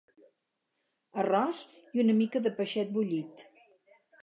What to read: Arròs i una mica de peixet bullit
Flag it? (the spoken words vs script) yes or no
no